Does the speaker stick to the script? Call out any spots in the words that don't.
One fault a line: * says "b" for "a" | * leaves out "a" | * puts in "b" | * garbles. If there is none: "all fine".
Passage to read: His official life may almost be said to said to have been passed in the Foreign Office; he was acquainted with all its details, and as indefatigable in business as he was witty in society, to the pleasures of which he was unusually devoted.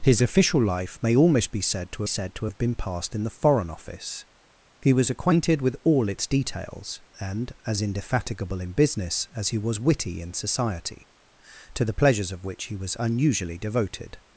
all fine